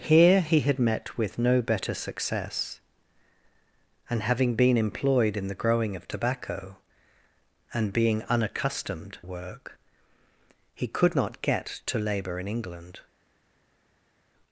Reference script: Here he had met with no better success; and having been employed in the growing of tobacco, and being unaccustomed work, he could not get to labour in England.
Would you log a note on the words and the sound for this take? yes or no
no